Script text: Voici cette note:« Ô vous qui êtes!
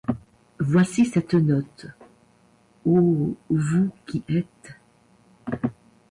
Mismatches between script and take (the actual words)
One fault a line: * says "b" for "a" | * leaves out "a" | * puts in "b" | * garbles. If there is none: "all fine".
all fine